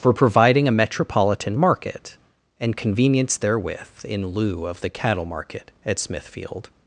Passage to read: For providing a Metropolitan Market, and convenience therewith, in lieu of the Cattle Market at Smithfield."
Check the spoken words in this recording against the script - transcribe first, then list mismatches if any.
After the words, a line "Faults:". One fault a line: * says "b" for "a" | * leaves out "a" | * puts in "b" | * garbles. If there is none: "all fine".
For providing a Metropolitan Market, and convenience therewith, in lieu of the Cattle Market at Smithfield."
Faults:
all fine